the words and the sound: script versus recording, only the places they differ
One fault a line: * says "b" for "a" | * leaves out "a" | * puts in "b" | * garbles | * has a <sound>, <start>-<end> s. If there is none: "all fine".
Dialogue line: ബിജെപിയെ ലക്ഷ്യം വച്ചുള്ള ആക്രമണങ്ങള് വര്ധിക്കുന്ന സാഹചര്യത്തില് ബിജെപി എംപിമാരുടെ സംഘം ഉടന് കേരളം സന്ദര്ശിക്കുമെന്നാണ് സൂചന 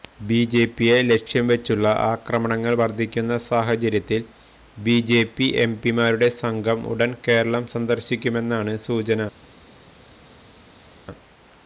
all fine